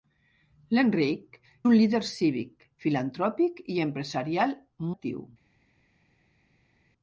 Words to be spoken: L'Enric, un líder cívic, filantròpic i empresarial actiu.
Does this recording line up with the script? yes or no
yes